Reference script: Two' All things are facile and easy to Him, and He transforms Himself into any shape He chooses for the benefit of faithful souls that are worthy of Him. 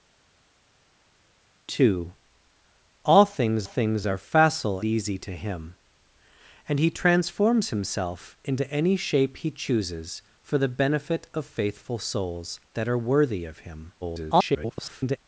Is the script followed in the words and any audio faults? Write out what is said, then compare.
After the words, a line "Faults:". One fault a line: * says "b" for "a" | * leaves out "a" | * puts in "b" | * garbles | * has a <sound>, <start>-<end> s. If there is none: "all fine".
Two' All things things are facile easy to Him, and He transforms Himself into any shape He chooses for the benefit of faithful souls that are worthy of Him. [garbled]
Faults:
* puts in "things"
* leaves out "and"
* garbles